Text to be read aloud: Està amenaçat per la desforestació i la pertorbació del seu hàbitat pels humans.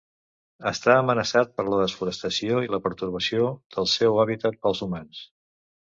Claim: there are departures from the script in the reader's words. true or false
false